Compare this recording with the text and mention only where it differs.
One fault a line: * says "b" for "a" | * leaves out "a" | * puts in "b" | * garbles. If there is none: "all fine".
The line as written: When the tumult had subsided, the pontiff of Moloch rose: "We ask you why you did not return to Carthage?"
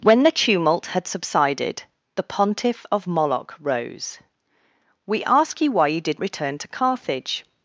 * leaves out "not"